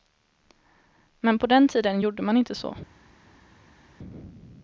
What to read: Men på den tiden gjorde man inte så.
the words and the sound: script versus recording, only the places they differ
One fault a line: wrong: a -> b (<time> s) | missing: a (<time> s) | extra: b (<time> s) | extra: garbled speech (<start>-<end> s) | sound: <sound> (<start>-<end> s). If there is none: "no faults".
no faults